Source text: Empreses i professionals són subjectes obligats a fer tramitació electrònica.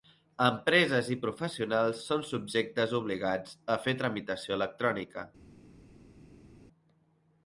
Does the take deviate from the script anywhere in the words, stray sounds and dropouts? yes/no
no